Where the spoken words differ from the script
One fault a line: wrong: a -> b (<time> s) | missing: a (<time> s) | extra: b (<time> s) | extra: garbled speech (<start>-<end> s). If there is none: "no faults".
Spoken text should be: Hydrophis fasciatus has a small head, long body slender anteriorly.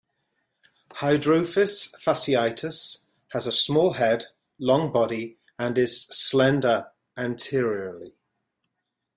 extra: and is (5.6 s)